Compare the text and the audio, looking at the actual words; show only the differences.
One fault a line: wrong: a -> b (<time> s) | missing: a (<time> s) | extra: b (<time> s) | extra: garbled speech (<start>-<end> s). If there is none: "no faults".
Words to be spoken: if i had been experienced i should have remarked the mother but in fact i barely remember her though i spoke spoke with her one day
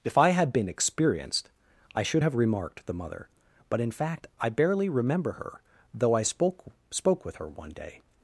no faults